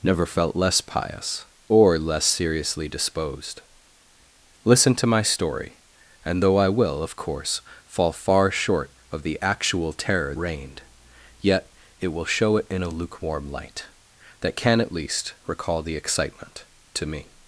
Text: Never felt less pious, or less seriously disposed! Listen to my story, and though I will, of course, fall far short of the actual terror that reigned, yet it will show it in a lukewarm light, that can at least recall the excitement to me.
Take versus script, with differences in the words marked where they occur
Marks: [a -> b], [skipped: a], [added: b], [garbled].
Never felt less pious, or less seriously disposed! Listen to my story, and though I will, of course, fall far short of the actual terror [skipped: that] reigned, yet it will show it in a lukewarm light, that can at least recall the excitement to me.